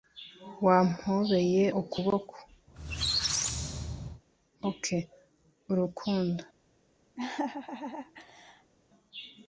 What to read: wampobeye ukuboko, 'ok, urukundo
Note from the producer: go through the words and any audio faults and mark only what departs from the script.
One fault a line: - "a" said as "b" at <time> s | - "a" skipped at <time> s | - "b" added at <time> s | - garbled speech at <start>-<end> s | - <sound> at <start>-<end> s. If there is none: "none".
- squeak at 2.7-4.2 s
- laugh at 7.2-8.7 s